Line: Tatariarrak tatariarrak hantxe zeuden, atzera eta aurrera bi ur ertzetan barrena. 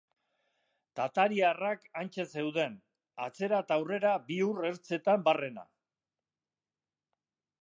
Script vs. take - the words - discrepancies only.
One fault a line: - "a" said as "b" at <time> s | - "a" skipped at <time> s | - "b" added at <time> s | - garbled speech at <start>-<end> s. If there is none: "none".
- "tatariarrak" skipped at 1.8 s